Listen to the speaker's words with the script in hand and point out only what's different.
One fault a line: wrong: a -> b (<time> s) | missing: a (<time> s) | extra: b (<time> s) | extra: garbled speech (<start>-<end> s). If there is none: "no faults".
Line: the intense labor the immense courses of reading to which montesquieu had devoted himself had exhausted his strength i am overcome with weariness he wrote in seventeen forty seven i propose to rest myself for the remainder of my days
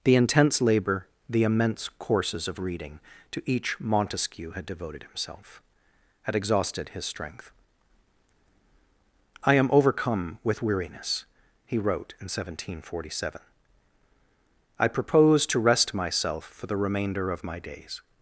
wrong: which -> each (3.5 s)